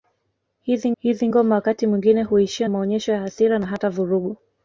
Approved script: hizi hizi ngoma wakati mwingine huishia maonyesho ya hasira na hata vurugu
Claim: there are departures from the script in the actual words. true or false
false